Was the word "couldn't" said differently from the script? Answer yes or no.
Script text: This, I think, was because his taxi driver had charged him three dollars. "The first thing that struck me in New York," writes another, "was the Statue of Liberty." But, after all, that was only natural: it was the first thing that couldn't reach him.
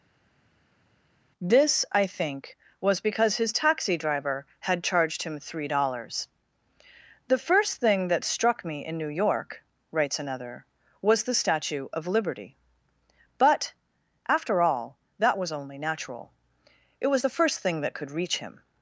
yes